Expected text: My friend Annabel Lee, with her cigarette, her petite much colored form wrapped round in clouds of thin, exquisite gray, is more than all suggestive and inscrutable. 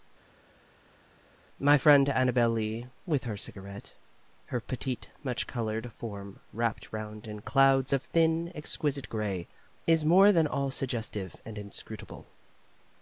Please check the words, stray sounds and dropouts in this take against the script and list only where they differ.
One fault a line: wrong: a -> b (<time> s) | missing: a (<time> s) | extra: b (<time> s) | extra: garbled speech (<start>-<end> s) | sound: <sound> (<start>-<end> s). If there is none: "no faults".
no faults